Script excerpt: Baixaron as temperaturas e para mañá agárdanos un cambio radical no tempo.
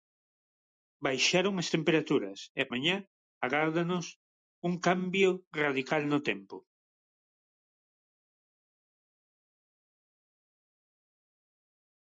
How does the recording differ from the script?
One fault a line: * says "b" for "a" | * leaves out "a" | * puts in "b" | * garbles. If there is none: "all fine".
* leaves out "para"